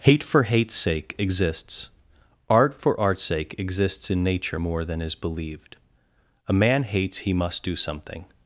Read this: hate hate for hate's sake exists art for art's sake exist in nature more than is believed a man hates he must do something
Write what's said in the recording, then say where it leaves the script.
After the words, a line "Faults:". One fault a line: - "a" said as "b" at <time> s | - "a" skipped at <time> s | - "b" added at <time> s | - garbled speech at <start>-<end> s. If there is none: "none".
hate for hate's sake exists art for art's sake exists in nature more than is believed a man hates he must do something
Faults:
- "hate" skipped at 0.2 s
- "exist" said as "exists" at 3.6 s